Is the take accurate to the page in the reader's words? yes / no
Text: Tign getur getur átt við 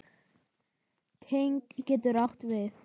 no